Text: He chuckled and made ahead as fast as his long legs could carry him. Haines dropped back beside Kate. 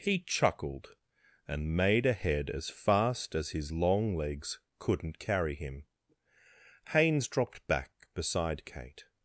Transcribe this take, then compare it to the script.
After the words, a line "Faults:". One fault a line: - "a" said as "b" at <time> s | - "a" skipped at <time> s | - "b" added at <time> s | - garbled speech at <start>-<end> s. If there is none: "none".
He chuckled and made ahead as fast as his long legs couldn't carry him. Haines dropped back beside Kate.
Faults:
- "could" said as "couldn't" at 4.8 s